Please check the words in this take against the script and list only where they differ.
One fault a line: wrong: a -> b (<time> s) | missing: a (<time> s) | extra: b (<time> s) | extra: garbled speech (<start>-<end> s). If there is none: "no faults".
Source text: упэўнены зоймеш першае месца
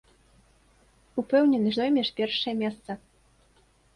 no faults